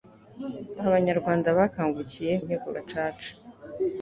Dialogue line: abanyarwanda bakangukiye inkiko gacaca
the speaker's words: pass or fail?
pass